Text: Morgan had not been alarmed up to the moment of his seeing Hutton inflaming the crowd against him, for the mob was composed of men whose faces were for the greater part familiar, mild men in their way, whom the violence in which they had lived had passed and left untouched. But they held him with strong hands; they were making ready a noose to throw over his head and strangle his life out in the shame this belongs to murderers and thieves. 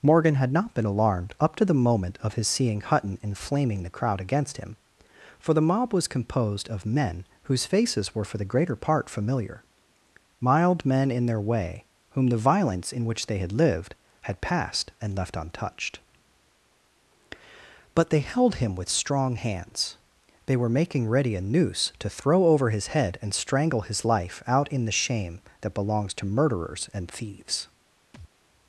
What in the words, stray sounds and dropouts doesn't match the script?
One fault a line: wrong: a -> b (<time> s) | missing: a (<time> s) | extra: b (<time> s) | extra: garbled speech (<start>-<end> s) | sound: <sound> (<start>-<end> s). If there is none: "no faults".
wrong: this -> that (25.6 s)
sound: thud (28.1-28.3 s)